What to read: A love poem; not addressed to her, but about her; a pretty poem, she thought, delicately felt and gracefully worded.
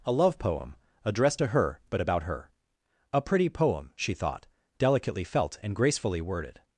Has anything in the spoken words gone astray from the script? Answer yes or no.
yes